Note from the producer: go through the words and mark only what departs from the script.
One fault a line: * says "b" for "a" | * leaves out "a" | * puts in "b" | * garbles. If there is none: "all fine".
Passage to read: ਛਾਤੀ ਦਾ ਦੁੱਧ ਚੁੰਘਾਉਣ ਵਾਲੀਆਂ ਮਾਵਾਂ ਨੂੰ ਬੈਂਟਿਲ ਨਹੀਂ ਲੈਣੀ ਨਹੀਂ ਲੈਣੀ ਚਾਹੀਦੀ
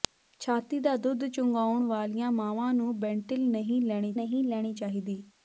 all fine